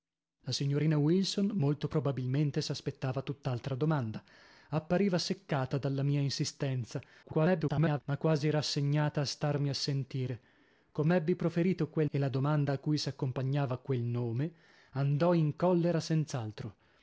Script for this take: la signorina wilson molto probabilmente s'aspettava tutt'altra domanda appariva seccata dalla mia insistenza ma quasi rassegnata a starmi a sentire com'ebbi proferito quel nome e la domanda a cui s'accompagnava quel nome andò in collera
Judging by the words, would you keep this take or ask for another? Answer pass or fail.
fail